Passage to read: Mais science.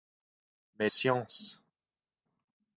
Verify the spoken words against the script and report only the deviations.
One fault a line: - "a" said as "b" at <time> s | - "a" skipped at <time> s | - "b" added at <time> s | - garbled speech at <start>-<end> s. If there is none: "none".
none